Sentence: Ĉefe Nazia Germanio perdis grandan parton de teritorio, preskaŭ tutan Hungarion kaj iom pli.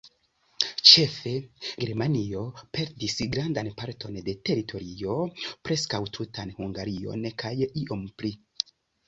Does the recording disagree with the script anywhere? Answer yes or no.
yes